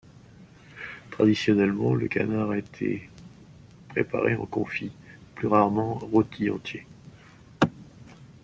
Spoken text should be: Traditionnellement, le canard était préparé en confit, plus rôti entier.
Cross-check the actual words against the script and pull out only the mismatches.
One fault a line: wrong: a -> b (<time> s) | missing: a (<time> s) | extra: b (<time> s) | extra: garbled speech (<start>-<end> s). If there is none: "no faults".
extra: rarement (5.5 s)